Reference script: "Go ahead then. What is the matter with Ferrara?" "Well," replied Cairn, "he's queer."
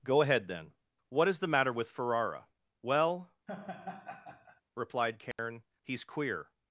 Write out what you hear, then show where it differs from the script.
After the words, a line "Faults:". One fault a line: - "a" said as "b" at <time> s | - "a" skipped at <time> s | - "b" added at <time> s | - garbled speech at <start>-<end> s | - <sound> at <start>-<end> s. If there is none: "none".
"Go ahead then. What is the matter with Ferrara?" "Well," replied Cairn, "he's queer."
Faults:
- laugh at 3.5-4.6 s
- dropout at 5.3-5.4 s